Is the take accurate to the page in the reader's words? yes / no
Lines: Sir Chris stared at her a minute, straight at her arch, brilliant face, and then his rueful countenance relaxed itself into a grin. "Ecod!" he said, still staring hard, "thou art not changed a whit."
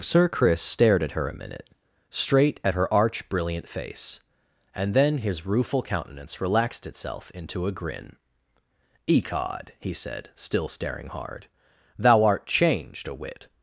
no